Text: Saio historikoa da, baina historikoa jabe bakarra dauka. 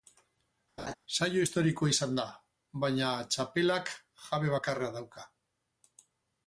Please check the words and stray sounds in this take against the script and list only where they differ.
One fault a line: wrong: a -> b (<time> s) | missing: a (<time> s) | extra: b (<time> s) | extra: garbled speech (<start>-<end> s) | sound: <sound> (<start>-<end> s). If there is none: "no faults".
sound: laugh (0.8-0.9 s)
extra: izan (1.9 s)
wrong: historikoa -> txapelak (3.4 s)